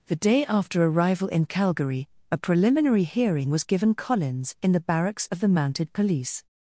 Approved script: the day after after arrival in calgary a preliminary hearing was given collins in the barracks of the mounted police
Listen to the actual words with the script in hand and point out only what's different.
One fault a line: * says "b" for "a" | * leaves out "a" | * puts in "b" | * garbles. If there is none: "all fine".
* leaves out "after"